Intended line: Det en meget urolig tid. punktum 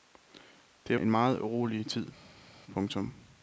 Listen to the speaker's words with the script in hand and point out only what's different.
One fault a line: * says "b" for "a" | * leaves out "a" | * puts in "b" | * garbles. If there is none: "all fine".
all fine